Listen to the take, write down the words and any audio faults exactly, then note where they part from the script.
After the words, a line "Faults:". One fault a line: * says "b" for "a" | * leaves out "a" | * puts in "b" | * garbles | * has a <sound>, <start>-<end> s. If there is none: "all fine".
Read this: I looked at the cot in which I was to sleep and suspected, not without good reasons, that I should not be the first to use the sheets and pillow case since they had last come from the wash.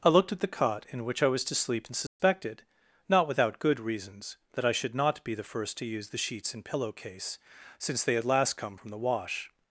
I looked at the cot in which I was to sleep and suspected, not without good reasons, that I should not be the first to use the sheets and pillow case since they had last come from the wash.
Faults:
* has a dropout, 2.1-2.2 s